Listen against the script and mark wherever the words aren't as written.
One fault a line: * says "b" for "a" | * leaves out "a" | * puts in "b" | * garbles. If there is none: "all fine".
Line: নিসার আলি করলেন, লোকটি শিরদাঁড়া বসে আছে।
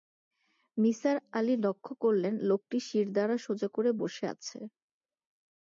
* puts in "লক্ষ"
* puts in "সোজা করে"